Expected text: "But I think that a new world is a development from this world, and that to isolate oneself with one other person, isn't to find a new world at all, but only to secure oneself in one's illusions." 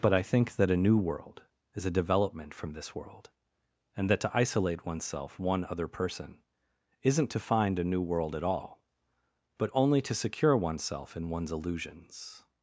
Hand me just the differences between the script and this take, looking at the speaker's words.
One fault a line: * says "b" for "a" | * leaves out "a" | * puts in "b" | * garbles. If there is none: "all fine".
* leaves out "with"